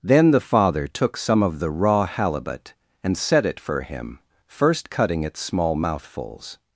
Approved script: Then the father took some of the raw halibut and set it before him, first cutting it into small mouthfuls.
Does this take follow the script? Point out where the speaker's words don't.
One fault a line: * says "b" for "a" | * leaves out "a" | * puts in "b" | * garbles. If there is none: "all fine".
* says "for" for "before"
* leaves out "into"